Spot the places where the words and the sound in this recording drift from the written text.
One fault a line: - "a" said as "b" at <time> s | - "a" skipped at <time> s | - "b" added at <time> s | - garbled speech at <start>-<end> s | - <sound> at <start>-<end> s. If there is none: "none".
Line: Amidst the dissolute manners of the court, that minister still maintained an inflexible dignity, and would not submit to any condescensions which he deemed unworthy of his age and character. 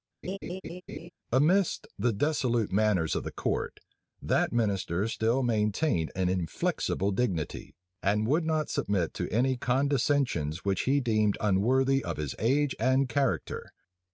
- laugh at 0.2-1.1 s